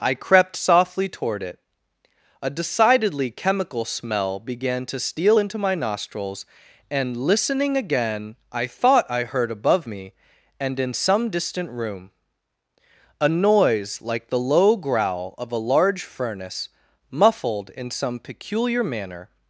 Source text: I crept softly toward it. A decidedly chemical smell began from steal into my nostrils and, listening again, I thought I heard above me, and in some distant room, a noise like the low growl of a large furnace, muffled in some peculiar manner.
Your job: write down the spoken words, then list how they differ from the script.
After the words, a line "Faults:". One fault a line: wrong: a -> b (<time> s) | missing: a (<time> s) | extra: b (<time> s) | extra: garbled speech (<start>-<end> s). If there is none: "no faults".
I crept softly toward it. A decidedly chemical smell began to steal into my nostrils and, listening again, I thought I heard above me, and in some distant room, a noise like the low growl of a large furnace, muffled in some peculiar manner.
Faults:
wrong: from -> to (4.9 s)